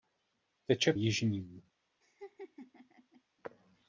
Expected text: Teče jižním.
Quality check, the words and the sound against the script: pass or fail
fail